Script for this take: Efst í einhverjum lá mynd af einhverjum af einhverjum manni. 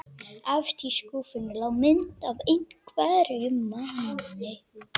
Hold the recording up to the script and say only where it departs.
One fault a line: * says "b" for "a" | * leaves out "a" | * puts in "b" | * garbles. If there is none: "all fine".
* says "skúffunni" for "einhverjum"
* leaves out "af einhverjum"